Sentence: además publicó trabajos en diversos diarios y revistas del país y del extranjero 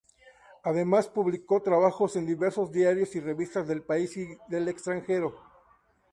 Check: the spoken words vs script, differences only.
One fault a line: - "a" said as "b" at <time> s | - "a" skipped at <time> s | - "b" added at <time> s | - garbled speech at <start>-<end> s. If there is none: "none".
none